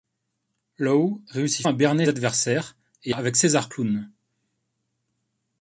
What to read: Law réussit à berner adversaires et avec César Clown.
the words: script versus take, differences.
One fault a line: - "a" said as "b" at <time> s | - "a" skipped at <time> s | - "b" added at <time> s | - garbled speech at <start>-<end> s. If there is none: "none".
none